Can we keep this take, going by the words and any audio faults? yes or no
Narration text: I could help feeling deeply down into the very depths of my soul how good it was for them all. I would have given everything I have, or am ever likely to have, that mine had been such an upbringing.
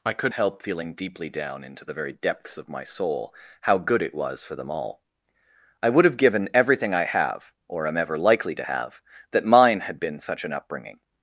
yes